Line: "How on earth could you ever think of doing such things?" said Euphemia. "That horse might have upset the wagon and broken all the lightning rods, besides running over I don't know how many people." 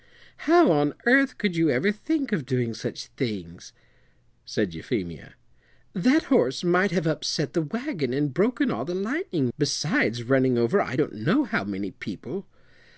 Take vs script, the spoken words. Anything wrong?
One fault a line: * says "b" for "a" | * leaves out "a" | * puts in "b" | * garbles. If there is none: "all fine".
* leaves out "rods"